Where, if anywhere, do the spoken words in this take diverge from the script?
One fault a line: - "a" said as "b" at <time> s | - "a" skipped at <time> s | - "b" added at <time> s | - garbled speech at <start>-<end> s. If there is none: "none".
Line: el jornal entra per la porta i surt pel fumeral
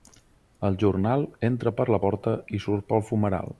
none